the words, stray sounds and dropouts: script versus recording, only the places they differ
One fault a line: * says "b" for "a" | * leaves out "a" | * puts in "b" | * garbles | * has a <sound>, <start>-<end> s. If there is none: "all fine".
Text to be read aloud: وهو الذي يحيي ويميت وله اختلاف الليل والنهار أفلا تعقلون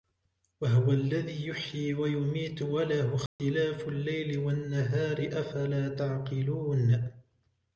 * has a dropout, 3.3-3.4 s